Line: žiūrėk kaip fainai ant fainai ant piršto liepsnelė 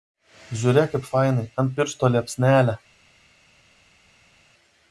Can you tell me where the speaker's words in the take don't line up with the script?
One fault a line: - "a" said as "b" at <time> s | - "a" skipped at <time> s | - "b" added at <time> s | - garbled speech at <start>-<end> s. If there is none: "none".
- "fainai ant" skipped at 1.8 s